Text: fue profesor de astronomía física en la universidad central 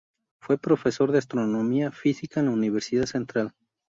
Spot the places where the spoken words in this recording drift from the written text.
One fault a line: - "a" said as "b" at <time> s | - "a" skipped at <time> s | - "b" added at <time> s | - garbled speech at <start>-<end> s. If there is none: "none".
none